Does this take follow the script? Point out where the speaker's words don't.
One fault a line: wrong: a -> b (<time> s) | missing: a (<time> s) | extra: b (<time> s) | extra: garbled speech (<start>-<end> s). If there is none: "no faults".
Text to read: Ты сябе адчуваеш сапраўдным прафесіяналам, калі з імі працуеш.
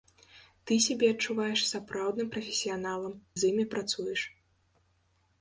missing: калі (3.2 s)